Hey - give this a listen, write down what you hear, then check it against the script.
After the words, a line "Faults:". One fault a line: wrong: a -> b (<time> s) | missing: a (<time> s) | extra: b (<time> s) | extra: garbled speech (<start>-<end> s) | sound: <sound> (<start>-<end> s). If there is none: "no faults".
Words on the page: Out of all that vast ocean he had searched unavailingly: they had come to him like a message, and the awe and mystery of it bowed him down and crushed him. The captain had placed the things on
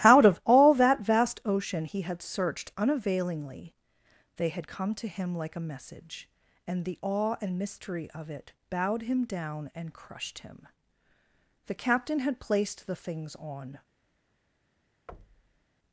Out of all that vast ocean he had searched unavailingly: they had come to him like a message, and the awe and mystery of it bowed him down and crushed him. The captain had placed the things on
Faults:
sound: thud (15.1-15.7 s)